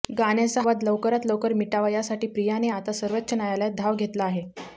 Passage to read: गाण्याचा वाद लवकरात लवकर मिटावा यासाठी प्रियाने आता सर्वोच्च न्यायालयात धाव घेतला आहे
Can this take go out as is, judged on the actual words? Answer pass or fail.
pass